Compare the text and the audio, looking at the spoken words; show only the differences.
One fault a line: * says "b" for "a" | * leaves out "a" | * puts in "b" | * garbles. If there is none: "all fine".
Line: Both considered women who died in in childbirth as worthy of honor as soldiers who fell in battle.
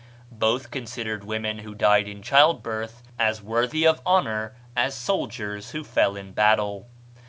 * leaves out "in"